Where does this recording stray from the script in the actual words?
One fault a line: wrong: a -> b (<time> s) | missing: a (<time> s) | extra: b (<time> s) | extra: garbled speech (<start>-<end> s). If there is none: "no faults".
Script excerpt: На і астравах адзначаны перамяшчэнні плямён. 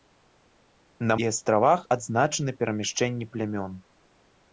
no faults